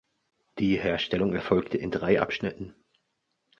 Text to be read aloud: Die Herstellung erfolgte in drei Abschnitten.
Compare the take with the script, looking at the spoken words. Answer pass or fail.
pass